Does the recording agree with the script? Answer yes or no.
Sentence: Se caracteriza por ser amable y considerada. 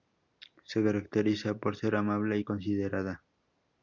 yes